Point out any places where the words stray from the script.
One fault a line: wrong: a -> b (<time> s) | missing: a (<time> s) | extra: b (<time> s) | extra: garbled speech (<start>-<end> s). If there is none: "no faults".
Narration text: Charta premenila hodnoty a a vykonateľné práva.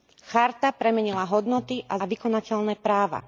no faults